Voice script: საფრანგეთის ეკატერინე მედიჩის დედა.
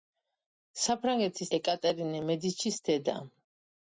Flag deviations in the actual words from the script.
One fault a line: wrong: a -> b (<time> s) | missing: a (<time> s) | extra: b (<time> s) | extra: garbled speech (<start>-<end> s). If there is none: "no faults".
no faults